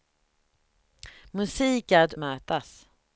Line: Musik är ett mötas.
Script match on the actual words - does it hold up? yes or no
yes